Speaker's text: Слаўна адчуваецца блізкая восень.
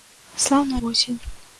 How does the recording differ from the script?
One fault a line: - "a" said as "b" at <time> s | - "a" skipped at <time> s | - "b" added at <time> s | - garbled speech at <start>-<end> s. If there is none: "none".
- "адчуваецца блізкая" skipped at 0.8 s